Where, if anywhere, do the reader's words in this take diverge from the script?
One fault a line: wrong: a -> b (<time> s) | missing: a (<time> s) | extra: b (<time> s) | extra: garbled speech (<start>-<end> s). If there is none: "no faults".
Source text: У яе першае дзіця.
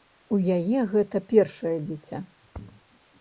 extra: гэта (0.9 s)